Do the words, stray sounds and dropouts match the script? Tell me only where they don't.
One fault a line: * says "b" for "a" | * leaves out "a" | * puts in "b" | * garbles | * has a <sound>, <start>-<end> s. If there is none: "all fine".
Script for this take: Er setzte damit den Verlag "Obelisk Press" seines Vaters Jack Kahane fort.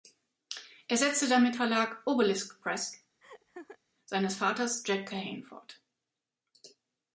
* leaves out "den"
* has a laugh, 3.2-3.8 s